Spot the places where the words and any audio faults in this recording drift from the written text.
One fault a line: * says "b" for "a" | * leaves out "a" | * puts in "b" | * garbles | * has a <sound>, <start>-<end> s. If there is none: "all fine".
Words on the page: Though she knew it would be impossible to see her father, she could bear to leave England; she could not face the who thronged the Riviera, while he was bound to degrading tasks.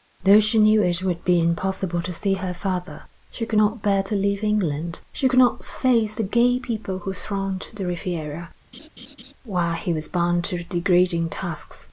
* puts in "not"
* puts in "gay people"
* has a laugh, 8.7-9.3 s